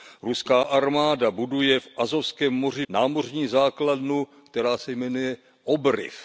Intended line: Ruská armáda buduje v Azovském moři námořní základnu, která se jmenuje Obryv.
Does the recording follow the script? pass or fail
pass